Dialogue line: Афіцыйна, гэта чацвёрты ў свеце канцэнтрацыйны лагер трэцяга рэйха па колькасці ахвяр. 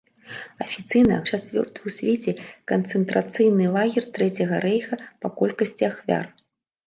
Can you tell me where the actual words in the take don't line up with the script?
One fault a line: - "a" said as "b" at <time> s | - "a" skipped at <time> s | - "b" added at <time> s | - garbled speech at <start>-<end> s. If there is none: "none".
- "гэта" skipped at 1.2 s